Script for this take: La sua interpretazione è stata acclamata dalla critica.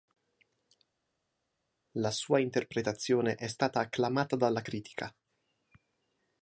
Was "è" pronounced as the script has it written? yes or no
yes